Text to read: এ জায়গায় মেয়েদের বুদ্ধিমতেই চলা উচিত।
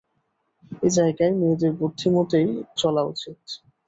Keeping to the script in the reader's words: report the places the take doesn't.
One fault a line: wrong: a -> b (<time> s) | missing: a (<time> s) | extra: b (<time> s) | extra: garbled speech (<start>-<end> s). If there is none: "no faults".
no faults